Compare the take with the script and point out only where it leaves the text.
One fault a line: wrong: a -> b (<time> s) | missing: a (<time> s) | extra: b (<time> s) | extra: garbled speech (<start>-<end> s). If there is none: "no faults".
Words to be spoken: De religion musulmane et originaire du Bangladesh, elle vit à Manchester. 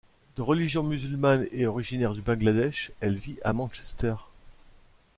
no faults